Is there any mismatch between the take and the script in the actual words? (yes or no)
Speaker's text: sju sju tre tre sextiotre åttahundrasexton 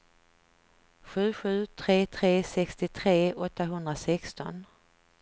no